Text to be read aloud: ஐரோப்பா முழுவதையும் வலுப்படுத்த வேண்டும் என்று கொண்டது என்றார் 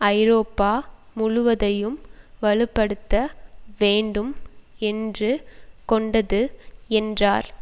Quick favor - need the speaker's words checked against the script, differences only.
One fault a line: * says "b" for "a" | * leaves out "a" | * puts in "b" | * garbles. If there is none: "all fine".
all fine